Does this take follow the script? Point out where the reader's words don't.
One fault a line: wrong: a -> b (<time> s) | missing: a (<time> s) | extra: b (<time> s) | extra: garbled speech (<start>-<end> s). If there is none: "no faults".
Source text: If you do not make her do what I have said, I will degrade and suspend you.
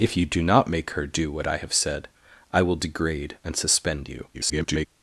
extra: garbled speech (4.3-4.9 s)